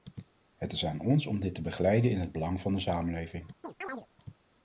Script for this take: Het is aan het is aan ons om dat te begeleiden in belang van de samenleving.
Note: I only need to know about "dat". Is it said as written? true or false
false